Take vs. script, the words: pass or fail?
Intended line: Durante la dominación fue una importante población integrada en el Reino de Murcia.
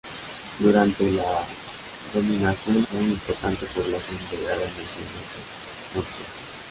pass